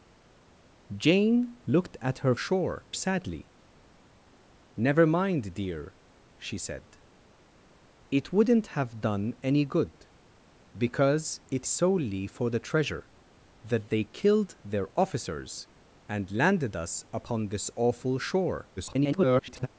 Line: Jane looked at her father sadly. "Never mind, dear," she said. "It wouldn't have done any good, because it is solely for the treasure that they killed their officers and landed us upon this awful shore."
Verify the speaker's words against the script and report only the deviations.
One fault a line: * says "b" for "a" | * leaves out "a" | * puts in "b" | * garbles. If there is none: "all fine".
* says "shore" for "father"
* leaves out "is"
* garbles